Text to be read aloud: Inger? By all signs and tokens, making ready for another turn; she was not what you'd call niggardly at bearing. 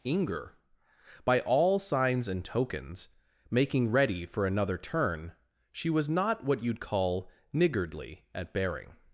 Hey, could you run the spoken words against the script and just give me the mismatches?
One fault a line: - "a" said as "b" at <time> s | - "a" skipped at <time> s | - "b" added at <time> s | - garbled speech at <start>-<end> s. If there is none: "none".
none